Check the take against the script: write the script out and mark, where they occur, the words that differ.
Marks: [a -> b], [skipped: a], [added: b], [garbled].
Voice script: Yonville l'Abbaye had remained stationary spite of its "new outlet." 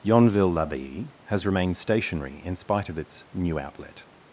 Yonville l'Abbaye [had -> has] remained stationary [added: in] spite of its "new outlet."